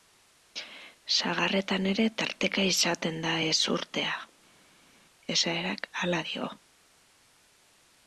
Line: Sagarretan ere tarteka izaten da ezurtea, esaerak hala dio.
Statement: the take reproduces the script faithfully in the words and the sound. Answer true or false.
true